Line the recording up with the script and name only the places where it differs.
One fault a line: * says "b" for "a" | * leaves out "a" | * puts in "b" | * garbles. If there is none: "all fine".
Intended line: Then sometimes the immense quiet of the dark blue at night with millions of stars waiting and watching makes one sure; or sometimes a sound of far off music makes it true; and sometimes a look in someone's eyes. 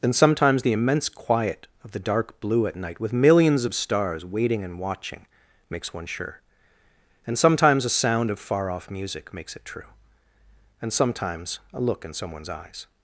* says "and" for "or"